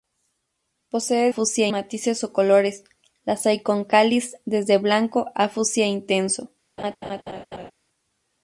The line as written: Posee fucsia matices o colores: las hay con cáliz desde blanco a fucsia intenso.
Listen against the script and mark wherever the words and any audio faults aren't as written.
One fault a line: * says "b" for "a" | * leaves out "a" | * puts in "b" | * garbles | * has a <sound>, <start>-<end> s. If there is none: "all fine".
* has a laugh, 6.8-7.7 s